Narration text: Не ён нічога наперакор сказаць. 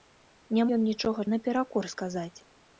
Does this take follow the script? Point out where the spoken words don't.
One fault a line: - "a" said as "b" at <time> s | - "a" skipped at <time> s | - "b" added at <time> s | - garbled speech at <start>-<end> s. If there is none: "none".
none